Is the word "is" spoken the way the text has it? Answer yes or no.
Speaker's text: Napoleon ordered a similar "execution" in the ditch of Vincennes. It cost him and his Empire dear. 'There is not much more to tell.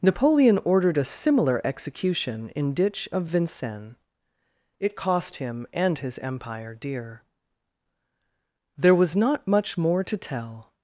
no